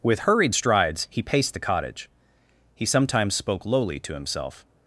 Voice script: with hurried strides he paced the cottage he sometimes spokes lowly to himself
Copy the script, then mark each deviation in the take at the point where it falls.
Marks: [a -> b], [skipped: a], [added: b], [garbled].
with hurried strides he paced the cottage he sometimes [spokes -> spoke] lowly to himself